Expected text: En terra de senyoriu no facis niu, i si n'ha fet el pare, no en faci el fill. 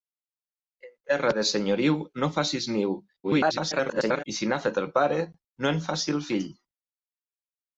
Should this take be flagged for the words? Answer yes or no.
yes